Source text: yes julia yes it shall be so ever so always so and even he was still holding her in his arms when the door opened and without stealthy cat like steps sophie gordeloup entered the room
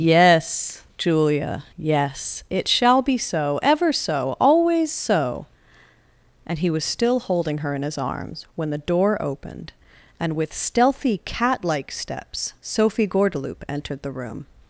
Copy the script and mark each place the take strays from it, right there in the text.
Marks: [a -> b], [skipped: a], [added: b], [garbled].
yes julia yes it shall be so ever so always so and [skipped: even] he was still holding her in his arms when the door opened and [without -> with] stealthy cat like steps sophie gordeloup entered the room